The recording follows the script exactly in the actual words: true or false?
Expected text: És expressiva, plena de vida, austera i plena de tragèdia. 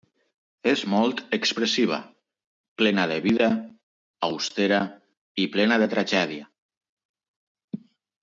false